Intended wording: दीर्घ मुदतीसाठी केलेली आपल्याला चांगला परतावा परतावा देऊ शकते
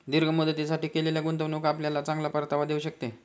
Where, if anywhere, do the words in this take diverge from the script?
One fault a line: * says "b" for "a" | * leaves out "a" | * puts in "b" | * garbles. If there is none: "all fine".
* puts in "गुंतवणूक"
* leaves out "परतावा"